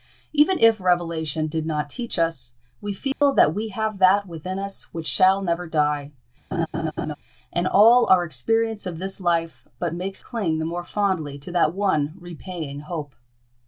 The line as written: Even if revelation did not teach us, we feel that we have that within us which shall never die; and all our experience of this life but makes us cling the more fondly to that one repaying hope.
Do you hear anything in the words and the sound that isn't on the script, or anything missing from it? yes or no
yes